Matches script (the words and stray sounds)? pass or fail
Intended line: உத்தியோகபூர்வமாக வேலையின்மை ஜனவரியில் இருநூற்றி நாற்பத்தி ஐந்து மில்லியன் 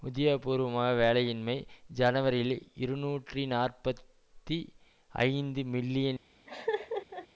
fail